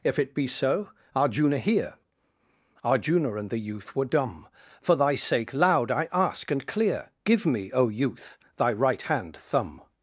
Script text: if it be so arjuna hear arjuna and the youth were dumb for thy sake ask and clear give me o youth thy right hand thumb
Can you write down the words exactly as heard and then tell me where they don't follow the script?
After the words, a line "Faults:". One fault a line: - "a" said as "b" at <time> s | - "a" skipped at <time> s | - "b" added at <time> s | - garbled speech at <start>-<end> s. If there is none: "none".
if it be so arjuna hear arjuna and the youth were dumb for thy sake loud i ask and clear give me o youth thy right hand thumb
Faults:
- "loud i" added at 5.5 s